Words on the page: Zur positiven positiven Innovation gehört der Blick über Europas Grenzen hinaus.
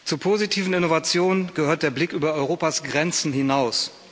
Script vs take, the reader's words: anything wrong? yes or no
yes